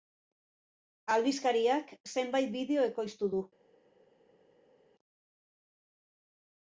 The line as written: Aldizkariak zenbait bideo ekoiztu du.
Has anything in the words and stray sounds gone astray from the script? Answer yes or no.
no